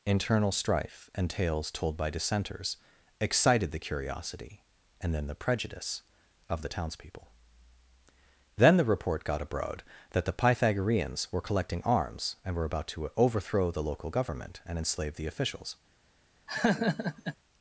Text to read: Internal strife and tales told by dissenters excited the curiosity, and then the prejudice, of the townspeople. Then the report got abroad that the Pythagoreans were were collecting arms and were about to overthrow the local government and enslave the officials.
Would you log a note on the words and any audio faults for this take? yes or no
yes